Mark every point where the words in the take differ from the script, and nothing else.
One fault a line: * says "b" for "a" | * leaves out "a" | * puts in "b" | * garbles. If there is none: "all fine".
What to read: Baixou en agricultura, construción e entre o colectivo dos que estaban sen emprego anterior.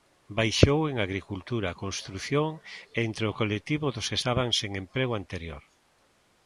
all fine